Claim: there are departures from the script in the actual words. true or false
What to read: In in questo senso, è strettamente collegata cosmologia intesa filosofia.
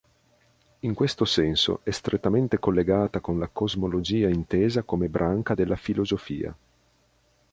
true